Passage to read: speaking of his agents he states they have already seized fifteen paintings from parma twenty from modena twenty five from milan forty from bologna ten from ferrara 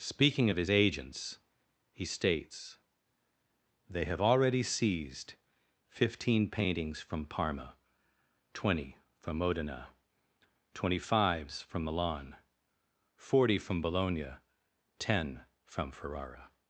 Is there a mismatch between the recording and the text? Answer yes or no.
yes